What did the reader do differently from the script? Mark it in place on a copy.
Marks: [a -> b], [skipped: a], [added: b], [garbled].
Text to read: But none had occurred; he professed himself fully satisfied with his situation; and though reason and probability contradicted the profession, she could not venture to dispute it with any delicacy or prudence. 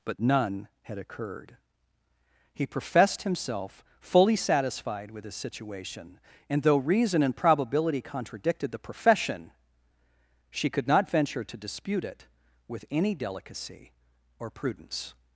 But none had occurred; he professed himself fully satisfied with his situation; and though reason and probability contradicted the profession, she could not venture to dispute it with any delicacy or prudence.